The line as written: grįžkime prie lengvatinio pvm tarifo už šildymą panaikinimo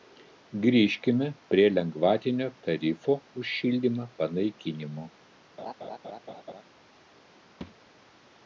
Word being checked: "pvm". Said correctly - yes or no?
no